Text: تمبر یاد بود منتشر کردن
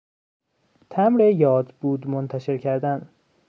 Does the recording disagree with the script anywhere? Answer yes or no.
no